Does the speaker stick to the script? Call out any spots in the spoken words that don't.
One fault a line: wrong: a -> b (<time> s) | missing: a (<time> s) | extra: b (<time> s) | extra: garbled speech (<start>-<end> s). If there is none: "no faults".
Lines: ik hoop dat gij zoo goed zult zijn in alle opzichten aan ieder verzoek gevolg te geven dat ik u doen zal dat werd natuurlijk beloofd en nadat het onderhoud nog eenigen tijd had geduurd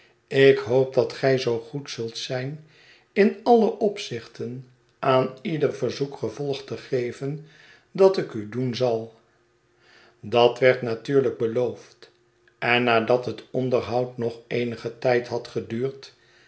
no faults